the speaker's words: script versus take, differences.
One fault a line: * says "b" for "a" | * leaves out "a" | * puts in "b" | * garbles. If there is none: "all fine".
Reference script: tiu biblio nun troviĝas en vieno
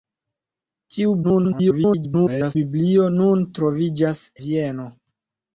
* garbles
* leaves out "en"